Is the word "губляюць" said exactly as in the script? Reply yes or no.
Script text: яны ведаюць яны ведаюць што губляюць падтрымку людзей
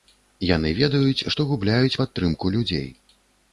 yes